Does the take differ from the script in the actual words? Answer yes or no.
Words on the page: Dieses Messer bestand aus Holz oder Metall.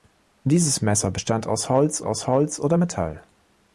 yes